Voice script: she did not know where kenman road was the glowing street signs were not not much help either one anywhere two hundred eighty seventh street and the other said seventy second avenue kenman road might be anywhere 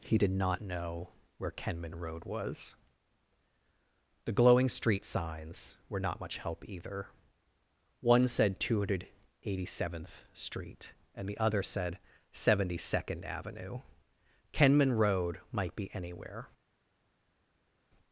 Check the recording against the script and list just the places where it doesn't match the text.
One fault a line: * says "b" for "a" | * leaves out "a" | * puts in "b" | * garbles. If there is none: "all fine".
* says "he" for "she"
* leaves out "not"
* says "said" for "anywhere"